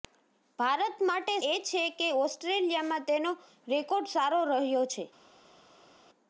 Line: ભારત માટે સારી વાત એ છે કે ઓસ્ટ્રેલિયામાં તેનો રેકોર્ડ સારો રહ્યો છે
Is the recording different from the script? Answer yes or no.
yes